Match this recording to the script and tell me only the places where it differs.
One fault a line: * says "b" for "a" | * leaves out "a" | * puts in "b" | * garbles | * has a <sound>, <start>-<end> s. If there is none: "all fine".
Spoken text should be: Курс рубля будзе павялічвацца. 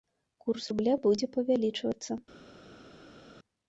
all fine